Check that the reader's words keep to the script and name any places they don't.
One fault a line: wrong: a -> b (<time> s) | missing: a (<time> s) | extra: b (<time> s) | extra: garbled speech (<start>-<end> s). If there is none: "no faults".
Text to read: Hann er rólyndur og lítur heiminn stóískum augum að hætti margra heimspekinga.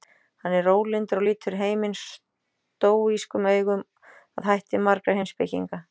no faults